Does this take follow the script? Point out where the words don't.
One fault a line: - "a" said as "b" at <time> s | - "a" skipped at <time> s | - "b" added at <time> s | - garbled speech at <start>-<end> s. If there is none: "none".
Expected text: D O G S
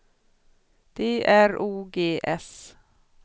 - "R" added at 1.2 s